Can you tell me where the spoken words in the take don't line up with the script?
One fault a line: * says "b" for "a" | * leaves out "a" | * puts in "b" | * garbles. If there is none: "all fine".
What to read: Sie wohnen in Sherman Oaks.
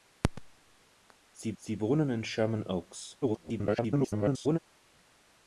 * puts in "sie"
* garbles